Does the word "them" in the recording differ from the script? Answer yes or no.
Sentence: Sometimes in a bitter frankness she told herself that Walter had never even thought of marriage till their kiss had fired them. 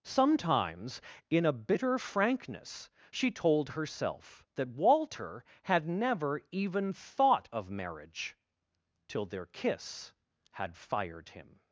yes